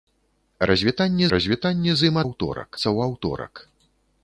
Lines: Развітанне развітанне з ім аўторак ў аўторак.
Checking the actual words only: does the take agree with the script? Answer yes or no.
yes